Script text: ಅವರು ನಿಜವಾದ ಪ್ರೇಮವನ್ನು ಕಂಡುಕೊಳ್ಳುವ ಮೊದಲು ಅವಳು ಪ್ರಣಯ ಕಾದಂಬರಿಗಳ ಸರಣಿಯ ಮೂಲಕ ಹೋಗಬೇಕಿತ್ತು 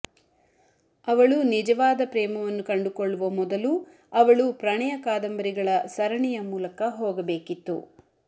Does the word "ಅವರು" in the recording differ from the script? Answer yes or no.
yes